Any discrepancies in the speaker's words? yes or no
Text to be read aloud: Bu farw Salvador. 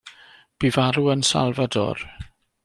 yes